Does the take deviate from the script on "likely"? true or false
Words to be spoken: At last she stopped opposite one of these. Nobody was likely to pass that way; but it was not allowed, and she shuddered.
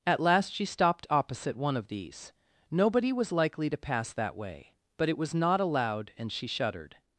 false